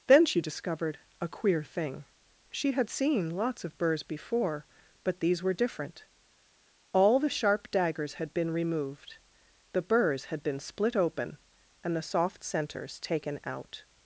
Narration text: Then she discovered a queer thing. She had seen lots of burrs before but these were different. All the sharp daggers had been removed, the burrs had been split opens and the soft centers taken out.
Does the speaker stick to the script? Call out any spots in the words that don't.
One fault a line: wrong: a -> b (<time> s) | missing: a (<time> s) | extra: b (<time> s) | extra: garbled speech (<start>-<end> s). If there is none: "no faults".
wrong: opens -> open (10.9 s)